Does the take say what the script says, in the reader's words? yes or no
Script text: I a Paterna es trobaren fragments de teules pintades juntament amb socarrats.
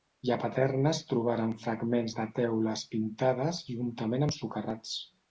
yes